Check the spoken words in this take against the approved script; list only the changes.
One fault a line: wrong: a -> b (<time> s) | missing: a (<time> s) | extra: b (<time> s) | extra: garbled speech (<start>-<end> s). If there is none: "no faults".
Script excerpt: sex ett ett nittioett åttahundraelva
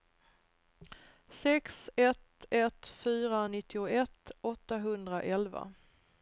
extra: fyra (2.9 s)